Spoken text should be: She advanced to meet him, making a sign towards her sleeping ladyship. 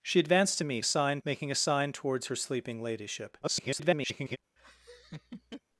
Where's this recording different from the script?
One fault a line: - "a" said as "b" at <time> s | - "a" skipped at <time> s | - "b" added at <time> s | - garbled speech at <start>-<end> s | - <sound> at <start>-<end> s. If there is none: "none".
- "him" said as "sign" at 0.8 s
- garbled speech at 3.4-4.4 s
- laugh at 4.6-5.6 s